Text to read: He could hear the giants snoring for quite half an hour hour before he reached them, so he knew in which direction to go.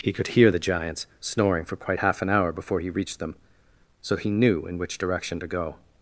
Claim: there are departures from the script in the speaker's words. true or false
true